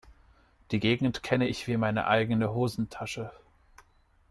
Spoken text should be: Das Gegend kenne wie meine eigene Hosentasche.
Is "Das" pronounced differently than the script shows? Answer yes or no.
yes